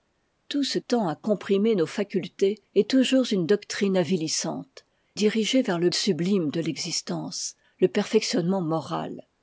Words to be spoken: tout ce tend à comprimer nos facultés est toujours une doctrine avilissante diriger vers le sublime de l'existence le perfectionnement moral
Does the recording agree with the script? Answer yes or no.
yes